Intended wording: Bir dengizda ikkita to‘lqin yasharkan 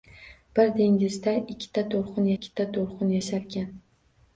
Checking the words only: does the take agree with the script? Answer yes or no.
no